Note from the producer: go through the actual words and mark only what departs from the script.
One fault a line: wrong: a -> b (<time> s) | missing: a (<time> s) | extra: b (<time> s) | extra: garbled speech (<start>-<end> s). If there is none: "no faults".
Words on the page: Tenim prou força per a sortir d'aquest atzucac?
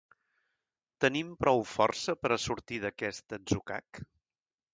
no faults